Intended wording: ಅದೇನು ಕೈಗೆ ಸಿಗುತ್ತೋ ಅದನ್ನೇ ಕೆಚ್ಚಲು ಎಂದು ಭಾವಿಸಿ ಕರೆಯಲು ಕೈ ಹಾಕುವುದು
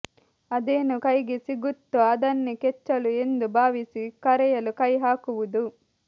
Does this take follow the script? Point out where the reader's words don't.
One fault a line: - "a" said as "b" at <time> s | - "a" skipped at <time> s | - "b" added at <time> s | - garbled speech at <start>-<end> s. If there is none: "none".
none